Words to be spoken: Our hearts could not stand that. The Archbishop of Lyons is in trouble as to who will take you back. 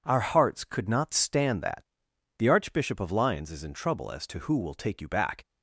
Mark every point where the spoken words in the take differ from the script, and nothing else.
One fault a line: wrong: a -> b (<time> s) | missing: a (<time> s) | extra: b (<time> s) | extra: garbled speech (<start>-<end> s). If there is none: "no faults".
no faults